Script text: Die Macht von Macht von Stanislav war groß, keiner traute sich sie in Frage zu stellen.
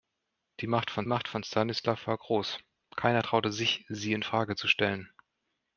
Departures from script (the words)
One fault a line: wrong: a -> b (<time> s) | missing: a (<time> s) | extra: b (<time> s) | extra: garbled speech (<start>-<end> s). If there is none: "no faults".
no faults